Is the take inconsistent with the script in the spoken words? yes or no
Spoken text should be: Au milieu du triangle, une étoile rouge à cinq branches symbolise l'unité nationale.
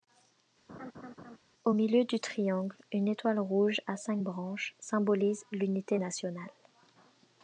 no